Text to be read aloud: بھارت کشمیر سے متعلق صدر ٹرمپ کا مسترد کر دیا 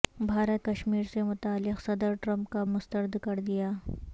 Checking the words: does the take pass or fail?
pass